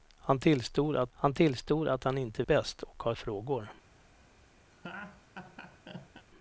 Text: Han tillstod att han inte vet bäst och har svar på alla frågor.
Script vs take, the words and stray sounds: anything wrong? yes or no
yes